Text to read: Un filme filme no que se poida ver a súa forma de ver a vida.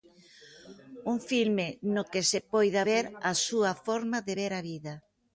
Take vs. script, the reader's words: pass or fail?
fail